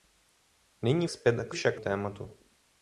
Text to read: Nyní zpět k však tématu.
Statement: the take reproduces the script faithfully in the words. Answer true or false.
true